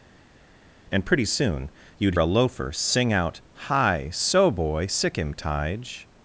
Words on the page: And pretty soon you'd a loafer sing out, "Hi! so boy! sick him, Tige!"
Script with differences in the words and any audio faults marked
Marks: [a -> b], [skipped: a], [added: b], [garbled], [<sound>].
And pretty soon you'd a loafer sing out, "Hi! so boy! sick him, Tige!"